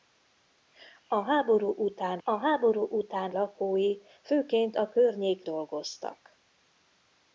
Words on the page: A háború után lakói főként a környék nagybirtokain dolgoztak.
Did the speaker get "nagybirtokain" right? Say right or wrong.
wrong